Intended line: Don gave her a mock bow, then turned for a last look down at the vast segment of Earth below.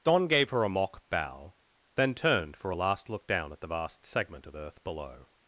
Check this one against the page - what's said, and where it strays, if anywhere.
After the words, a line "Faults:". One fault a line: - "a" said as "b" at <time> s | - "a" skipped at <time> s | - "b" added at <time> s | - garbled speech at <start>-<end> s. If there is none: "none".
Don gave her a mock bow, then turned for a last look down at the vast segment of Earth below.
Faults:
none